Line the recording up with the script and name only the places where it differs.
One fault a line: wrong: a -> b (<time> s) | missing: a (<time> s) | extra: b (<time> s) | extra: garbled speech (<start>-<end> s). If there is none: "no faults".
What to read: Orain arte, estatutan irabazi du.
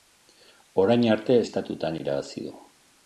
no faults